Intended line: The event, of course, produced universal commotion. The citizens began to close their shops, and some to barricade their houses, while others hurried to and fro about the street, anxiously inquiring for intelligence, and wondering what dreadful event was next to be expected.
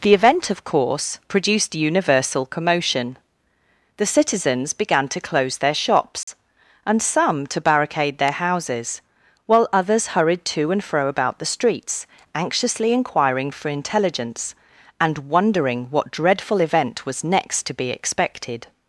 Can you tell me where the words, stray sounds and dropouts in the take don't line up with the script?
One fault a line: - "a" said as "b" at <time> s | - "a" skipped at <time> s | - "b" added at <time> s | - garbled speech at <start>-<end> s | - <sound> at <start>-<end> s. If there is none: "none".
- dropout at 6.2-6.3 s
- "street" said as "streets" at 11.5 s